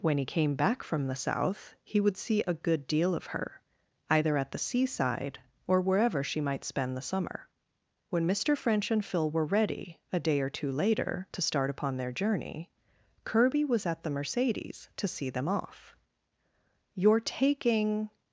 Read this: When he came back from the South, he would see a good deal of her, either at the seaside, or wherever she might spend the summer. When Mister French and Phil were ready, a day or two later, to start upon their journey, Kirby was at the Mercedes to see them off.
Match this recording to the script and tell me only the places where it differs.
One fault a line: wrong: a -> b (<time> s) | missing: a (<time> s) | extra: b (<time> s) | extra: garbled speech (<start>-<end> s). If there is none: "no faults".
extra: You're taking (16.9 s)